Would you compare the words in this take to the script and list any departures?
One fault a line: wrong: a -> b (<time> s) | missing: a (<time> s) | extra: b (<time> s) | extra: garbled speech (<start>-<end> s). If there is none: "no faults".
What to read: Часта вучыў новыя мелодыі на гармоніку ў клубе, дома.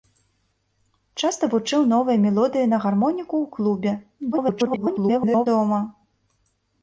extra: garbled speech (4.3-5.5 s)